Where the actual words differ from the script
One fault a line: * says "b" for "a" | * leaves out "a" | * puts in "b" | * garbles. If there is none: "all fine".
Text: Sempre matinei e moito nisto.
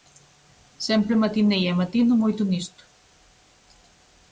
* puts in "matino"